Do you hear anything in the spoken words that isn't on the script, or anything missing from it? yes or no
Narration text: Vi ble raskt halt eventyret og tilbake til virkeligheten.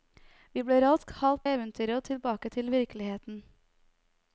no